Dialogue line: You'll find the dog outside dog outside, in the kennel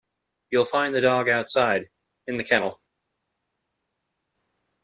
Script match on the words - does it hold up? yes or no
no